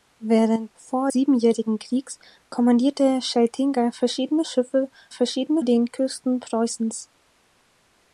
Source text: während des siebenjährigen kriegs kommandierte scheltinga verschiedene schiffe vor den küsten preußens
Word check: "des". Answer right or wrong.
wrong